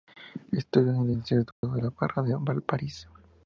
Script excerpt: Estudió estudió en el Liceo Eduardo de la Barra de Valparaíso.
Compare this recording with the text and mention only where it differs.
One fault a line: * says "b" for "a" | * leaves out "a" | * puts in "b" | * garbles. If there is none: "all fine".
* leaves out "estudió"